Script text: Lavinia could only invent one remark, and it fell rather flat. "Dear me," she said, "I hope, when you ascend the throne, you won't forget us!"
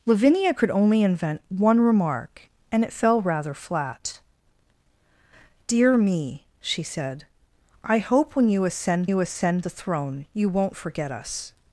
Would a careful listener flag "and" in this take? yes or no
no